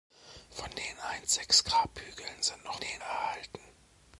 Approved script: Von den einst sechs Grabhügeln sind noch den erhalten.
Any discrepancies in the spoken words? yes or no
no